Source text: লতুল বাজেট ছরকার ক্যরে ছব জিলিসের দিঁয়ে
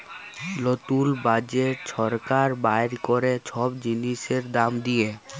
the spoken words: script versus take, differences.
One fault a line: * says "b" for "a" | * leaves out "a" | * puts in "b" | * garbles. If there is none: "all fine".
* puts in "বাইর"
* puts in "দাম"